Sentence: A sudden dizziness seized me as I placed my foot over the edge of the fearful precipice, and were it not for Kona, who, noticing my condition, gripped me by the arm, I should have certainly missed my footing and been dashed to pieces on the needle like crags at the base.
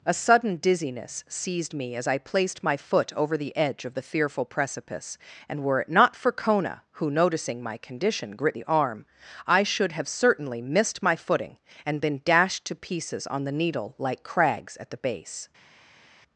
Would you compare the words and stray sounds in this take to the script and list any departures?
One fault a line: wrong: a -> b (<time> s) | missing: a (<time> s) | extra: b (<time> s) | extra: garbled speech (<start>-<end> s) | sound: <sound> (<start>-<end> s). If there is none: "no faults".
missing: me by (8.6 s)